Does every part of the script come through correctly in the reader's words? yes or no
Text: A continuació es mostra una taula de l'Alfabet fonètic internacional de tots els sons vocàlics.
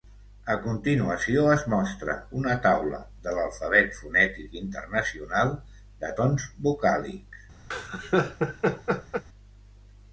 no